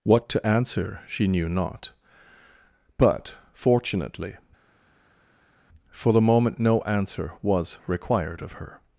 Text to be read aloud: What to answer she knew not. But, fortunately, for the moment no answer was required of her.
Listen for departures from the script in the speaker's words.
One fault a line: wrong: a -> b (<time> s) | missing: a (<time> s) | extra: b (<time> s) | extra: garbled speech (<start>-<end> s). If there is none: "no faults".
no faults